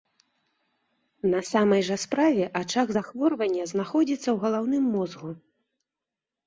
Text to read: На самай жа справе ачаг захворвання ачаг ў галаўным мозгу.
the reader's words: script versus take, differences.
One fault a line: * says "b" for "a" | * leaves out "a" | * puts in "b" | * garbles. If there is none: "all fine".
* says "знаходзіцца" for "ачаг"